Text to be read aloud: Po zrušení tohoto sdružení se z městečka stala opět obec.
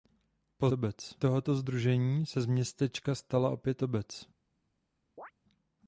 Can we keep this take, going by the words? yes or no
no